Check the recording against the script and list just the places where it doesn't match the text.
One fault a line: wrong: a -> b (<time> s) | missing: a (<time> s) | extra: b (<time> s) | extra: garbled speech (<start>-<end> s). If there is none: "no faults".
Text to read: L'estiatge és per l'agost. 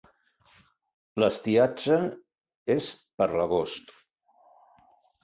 no faults